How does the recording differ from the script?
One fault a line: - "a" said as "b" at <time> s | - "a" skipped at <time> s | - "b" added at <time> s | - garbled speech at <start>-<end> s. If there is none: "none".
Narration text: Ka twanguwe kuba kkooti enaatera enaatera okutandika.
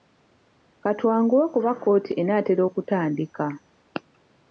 - "enaatera" skipped at 2.6 s